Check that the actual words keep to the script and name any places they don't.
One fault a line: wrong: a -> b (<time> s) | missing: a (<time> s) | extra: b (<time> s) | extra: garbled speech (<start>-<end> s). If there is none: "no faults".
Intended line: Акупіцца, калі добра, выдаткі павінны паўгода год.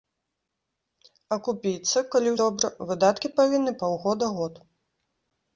no faults